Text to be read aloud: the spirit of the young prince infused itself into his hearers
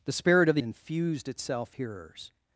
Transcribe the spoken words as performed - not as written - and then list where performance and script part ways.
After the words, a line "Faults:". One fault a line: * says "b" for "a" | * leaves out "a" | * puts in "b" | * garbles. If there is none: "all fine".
the spirit of the infused itself hearers
Faults:
* leaves out "young prince"
* leaves out "into his"